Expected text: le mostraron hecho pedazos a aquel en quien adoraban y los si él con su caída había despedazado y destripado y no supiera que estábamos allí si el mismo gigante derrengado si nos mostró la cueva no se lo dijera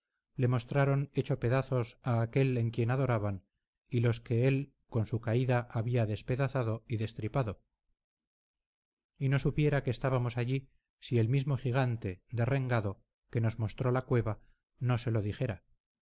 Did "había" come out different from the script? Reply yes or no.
no